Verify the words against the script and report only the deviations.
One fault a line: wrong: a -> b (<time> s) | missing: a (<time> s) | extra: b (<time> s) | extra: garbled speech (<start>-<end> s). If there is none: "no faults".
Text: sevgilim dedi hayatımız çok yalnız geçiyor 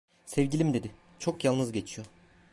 missing: hayatımız (0.9 s)